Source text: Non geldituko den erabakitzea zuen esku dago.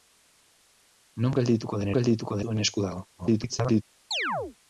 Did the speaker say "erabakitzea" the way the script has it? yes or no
no